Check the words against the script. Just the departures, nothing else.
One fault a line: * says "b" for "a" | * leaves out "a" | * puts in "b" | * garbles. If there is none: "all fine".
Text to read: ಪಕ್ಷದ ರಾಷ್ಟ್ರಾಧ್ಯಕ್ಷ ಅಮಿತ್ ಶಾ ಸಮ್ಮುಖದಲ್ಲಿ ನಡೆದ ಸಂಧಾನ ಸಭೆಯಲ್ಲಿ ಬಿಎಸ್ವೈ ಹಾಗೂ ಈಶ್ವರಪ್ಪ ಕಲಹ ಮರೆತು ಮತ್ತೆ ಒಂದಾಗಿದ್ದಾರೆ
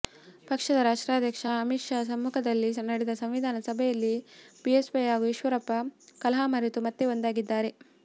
all fine